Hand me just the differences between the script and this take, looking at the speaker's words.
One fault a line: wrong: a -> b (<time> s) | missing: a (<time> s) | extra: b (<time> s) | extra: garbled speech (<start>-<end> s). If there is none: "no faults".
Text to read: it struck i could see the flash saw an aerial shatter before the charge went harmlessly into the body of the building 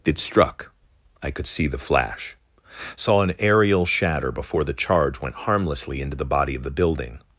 no faults